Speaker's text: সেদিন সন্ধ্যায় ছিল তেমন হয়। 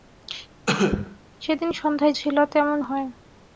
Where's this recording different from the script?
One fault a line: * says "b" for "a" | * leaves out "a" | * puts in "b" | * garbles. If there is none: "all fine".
all fine